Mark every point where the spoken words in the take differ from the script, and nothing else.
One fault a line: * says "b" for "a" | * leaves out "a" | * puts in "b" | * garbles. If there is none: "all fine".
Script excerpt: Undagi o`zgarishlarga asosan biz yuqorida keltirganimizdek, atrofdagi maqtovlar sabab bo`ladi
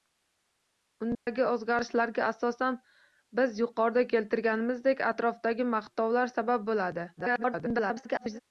* garbles